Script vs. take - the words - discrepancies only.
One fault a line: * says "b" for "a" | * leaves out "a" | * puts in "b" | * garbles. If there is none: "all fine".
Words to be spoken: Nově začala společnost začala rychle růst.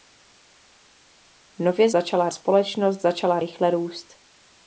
all fine